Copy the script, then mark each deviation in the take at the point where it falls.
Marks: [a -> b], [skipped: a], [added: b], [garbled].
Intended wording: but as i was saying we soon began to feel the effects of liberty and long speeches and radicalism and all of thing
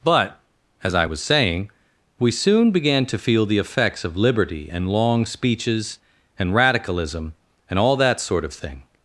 but as i was saying we soon began to feel the effects of liberty and long speeches and radicalism and all [added: that sort] of thing